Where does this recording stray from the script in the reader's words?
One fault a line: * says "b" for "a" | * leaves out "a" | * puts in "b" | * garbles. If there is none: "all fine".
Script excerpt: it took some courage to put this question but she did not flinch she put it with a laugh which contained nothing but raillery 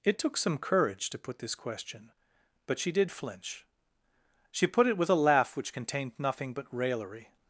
* leaves out "not"